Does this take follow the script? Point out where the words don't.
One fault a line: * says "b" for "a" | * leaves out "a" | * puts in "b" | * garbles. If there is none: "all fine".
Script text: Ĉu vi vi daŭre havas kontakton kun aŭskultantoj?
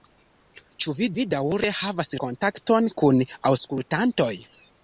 all fine